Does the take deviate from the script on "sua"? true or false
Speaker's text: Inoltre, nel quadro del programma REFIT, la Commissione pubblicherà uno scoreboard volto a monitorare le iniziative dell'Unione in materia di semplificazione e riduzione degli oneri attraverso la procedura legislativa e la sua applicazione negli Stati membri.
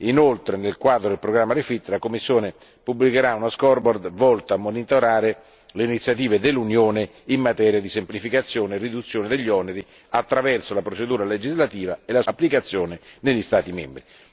true